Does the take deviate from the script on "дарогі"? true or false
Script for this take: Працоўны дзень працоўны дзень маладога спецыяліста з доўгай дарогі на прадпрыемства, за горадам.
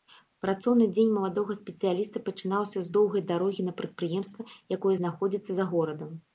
false